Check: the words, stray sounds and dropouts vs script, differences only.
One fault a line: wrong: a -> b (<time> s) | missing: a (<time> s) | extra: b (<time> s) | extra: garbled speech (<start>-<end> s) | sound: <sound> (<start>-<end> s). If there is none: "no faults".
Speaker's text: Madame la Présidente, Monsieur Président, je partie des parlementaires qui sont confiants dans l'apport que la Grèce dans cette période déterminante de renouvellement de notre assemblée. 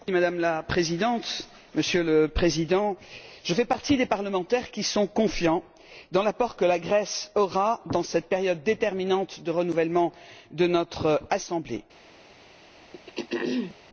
extra: le (2.0 s)
extra: fais (3.5 s)
extra: aura (7.3 s)
sound: throat clearing (12.9-13.8 s)